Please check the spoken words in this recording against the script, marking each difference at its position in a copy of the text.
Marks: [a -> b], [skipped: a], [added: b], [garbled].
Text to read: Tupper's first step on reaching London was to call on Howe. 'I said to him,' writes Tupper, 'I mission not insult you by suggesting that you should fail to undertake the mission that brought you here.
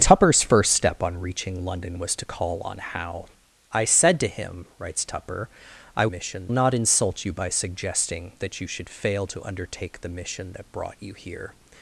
Tupper's first step on reaching London was to call on Howe. 'I said to him,' writes Tupper, 'I mission not insult you by suggesting that you should fail to undertake the mission that brought you here.